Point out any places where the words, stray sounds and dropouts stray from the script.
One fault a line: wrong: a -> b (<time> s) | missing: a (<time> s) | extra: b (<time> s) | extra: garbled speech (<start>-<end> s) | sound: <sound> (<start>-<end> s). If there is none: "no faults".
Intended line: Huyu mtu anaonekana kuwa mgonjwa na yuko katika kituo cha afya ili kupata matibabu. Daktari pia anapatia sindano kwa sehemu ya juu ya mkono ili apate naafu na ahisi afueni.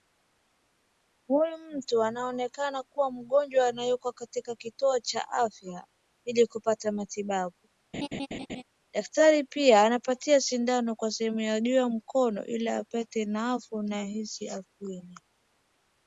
sound: laugh (7.9-8.6 s)